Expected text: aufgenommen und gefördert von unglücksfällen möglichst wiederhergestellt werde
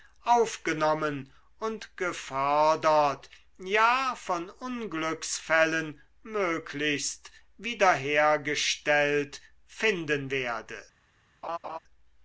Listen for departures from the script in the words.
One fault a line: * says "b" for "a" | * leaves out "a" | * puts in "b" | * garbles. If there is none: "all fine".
* puts in "ja"
* puts in "finden"